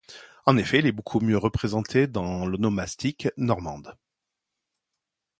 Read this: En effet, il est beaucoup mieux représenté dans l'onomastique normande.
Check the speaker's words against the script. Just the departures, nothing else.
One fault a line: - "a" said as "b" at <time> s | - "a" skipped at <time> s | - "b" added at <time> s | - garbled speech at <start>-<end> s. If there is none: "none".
none